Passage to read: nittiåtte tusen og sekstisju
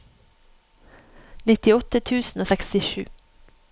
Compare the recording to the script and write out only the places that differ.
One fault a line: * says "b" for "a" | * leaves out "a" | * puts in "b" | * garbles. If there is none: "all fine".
all fine